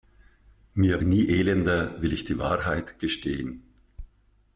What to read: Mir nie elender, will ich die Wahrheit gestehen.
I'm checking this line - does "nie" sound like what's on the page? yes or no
yes